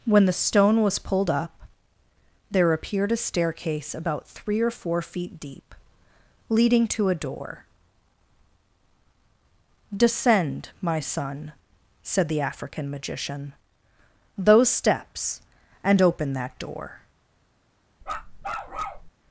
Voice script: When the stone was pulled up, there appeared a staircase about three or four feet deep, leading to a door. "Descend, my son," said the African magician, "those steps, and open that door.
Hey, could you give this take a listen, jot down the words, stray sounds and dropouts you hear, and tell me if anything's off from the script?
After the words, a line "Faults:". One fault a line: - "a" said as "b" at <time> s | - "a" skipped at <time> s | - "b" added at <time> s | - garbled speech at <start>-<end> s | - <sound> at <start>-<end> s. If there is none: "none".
When the stone was pulled up, there appeared a staircase about three or four feet deep, leading to a door. "Descend, my son," said the African magician, "those steps, and open that door.
Faults:
- bark at 18.0-19.1 s